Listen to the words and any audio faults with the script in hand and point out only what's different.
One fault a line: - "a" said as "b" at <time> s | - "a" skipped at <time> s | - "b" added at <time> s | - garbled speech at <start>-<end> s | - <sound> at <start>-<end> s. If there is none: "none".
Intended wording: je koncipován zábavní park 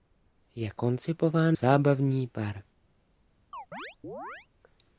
- chirp at 3.5-4.5 s